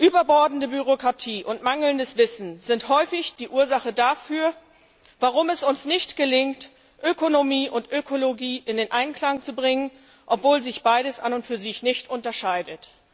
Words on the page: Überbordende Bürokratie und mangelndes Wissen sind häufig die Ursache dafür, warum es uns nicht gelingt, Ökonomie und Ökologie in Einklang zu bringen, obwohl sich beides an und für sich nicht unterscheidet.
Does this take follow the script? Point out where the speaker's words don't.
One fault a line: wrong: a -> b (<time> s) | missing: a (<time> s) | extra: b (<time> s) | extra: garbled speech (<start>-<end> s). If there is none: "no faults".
no faults